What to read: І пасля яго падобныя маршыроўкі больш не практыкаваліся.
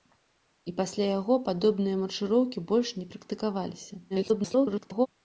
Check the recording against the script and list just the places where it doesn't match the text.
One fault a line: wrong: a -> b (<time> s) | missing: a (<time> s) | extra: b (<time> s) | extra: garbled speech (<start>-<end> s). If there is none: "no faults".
extra: garbled speech (4.1-5.1 s)